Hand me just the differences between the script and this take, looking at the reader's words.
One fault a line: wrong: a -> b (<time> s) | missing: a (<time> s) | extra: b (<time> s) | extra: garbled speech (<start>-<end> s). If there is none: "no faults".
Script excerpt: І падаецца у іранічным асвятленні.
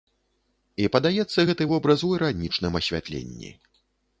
extra: гэты вобраз (1.5 s)